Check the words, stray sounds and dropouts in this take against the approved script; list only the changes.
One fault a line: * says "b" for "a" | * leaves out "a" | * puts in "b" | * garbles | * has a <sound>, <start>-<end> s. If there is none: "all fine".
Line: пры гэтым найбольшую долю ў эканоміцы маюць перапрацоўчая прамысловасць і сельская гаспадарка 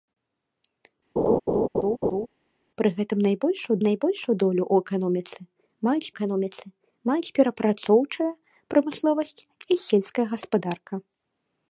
* has a laugh, 1.2-2.3 s
* puts in "найбольшую"
* puts in "эканоміцы маюць"